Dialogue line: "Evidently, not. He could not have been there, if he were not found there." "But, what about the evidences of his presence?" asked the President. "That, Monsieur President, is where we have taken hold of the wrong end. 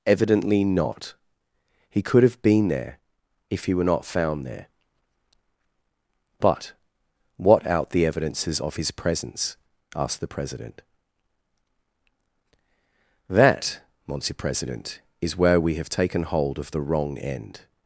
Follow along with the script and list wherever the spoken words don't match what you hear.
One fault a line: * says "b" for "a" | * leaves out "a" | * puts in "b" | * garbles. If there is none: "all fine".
* leaves out "not"
* says "out" for "about"